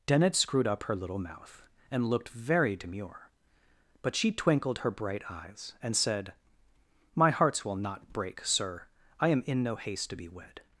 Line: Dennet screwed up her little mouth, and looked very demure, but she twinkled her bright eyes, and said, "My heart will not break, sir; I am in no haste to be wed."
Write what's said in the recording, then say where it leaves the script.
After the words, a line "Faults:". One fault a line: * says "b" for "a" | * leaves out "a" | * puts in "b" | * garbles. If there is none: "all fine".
Dennet screwed up her little mouth, and looked very demure, but she twinkled her bright eyes, and said, "My hearts will not break, sir; I am in no haste to be wed."
Faults:
* says "hearts" for "heart"